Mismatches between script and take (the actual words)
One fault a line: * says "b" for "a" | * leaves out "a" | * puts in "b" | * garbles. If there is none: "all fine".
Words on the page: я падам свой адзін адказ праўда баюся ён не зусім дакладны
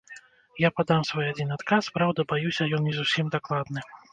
all fine